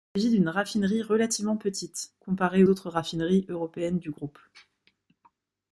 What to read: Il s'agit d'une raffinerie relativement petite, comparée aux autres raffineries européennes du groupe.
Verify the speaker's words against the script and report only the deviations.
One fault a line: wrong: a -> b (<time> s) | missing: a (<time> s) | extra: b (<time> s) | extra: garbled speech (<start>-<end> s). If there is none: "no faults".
missing: aux (2.6 s)